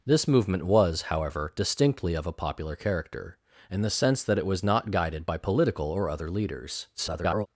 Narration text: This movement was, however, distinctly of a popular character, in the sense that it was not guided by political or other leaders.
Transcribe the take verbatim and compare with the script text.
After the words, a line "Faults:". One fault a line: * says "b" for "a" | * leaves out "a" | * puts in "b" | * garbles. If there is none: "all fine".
This movement was, however, distinctly of a popular character, in the sense that it was not guided by political or other leaders. [garbled]
Faults:
* garbles